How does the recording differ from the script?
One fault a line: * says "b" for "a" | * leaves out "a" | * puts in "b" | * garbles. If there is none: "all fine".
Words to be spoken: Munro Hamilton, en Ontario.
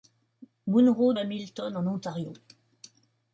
all fine